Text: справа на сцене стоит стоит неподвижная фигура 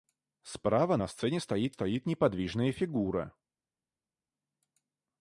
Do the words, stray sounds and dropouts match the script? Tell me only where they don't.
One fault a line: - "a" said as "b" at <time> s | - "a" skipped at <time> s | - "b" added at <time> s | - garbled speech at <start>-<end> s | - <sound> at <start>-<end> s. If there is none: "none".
none